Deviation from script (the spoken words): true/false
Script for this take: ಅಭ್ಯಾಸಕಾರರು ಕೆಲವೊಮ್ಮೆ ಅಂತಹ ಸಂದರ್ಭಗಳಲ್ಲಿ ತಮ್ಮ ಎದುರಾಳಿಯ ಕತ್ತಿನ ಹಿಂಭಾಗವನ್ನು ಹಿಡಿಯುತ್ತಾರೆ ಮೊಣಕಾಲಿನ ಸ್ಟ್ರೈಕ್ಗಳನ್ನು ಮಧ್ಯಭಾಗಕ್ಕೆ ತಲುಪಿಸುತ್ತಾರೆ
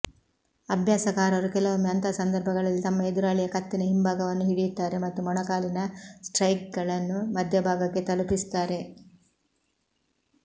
true